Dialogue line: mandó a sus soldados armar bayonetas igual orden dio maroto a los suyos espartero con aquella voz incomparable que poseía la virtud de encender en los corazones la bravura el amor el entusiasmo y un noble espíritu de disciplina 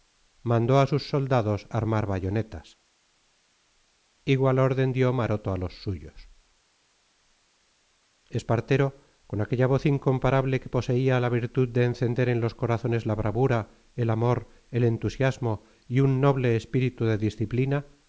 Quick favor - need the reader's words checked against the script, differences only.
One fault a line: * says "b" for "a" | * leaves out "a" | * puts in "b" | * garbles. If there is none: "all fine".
all fine